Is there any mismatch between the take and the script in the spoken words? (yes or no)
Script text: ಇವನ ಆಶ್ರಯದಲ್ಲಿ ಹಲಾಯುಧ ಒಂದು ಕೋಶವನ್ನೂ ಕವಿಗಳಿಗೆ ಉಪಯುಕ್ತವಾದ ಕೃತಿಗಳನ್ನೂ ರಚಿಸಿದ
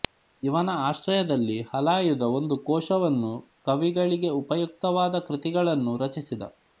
no